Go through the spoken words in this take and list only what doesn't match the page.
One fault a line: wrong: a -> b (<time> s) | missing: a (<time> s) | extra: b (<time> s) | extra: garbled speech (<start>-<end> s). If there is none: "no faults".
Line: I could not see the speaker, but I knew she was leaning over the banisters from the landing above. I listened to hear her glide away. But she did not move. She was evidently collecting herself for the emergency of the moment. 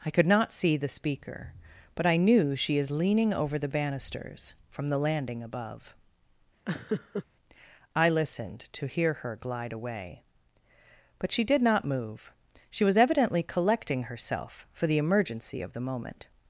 wrong: was -> is (2.8 s)